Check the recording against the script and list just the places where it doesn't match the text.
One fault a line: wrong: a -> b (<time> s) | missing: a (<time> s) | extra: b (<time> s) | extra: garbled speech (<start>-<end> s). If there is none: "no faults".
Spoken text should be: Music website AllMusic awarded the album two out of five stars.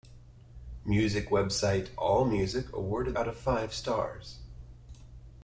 missing: the album two (3.1 s)